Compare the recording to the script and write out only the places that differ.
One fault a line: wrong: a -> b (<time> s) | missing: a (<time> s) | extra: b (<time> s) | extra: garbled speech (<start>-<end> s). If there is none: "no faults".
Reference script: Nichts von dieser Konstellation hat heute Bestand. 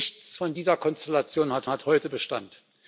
extra: hat (1.7 s)